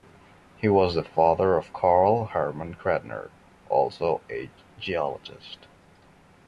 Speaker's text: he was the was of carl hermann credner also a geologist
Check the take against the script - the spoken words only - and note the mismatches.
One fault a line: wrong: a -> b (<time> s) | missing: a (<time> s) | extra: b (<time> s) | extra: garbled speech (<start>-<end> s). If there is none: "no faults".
wrong: was -> father (1.0 s)